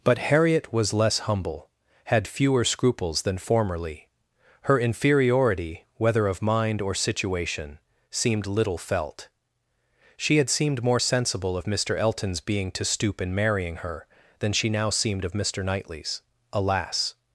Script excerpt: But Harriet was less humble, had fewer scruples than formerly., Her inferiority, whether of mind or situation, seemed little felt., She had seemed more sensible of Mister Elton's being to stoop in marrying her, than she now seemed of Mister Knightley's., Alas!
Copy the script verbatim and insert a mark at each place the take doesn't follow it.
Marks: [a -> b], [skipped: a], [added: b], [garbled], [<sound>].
But Harriet was less humble, had fewer scruples than formerly., Her inferiority, whether of mind or situation, seemed little felt., She had seemed more sensible of Mister Elton's being to stoop in marrying her, than she now seemed of Mister Knightley's., Alas!